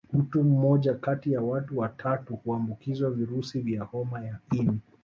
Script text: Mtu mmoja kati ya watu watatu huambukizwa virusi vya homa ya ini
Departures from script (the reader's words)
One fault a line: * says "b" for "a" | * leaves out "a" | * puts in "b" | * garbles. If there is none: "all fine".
all fine